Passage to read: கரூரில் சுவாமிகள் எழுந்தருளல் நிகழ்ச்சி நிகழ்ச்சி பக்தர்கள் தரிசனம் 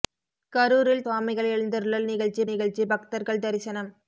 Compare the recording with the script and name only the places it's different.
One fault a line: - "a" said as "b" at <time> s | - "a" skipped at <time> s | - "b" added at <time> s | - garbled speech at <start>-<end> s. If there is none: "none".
none